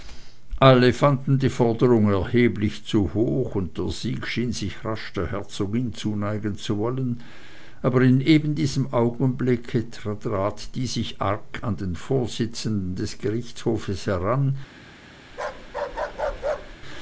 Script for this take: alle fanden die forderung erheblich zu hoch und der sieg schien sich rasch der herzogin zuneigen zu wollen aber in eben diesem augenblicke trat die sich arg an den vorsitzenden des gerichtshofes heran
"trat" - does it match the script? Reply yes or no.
yes